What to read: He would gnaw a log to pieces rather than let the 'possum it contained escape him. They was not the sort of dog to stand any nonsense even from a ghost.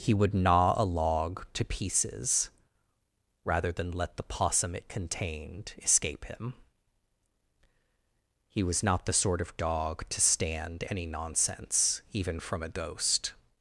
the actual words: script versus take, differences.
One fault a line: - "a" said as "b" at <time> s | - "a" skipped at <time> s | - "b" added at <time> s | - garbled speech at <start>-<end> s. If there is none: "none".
- "They" said as "He" at 8.5 s